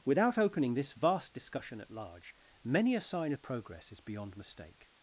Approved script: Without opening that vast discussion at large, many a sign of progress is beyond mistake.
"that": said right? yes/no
no